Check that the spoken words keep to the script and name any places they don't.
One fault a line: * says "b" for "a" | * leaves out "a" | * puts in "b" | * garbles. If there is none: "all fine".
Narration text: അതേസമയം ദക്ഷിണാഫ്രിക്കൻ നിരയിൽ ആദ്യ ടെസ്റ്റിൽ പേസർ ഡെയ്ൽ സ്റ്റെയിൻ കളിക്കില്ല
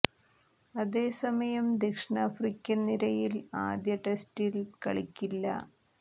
* leaves out "പേസർ ഡെയ്ൽ സ്റ്റെയിൻ"